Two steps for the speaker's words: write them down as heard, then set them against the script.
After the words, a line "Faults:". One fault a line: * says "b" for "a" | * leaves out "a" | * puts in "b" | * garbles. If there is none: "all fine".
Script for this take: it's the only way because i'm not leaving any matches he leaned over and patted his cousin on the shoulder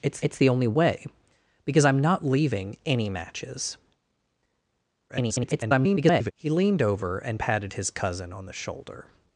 it's it's the only way because i'm not leaving any matches [garbled] he leaned over and patted his cousin on the shoulder
Faults:
* puts in "it's"
* garbles